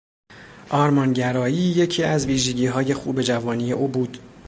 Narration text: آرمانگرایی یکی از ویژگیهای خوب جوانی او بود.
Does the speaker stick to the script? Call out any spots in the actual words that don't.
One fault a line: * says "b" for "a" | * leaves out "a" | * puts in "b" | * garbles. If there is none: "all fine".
all fine